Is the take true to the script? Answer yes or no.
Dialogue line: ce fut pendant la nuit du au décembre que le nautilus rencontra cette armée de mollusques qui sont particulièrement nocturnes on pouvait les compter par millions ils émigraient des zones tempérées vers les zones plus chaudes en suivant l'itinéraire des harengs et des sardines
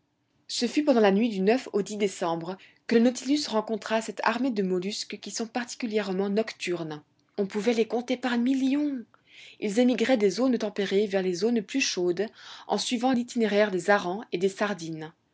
yes